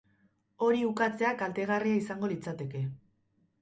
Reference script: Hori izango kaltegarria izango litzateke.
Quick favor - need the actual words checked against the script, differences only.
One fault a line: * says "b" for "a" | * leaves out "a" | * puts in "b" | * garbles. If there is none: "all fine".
* says "ukatzea" for "izango"